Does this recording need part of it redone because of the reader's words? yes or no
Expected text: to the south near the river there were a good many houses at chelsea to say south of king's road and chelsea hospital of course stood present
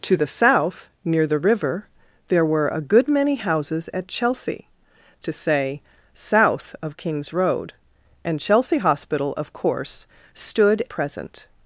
no